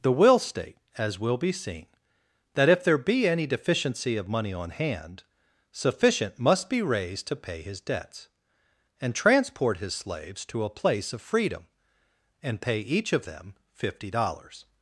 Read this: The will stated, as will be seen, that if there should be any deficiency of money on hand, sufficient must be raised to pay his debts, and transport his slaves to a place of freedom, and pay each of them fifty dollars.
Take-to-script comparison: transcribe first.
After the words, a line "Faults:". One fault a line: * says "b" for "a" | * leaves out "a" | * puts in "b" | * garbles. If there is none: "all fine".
The will state, as will be seen, that if there be any deficiency of money on hand, sufficient must be raised to pay his debts, and transport his slaves to a place of freedom, and pay each of them fifty dollars.
Faults:
* says "state" for "stated"
* leaves out "should"